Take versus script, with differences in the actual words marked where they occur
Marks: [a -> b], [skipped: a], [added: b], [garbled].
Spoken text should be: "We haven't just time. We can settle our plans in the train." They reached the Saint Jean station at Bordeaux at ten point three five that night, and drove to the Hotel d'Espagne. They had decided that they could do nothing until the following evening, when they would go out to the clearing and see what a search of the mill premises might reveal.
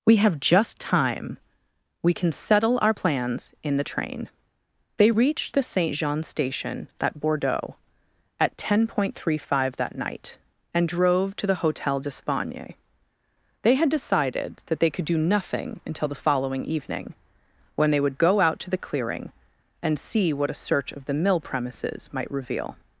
"We [haven't -> have] just time. We can settle our plans in the train." They reached the Saint Jean station at Bordeaux at ten point three five that night, and drove to the Hotel d'Espagne. They had decided that they could do nothing until the following evening, when they would go out to the clearing and see what a search of the mill premises might reveal.